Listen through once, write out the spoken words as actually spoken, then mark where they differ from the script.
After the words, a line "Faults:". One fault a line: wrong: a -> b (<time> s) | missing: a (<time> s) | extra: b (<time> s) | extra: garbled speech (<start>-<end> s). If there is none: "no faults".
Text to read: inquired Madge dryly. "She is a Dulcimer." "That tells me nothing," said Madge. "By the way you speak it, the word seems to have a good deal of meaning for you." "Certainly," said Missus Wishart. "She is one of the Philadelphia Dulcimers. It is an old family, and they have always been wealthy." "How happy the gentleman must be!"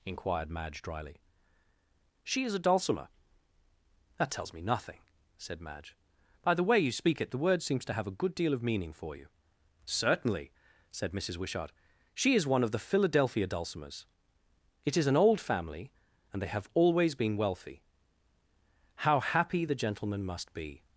inquired Madge dryly. "She is a Dulcimer." "That tells me nothing," said Madge. "By the way you speak it, the word seems to have a good deal of meaning for you." "Certainly," said Missus Wishart. "She is one of the Philadelphia Dulcimers. It is an old family, and they have always been wealthy." "How happy the gentleman must be!"
Faults:
no faults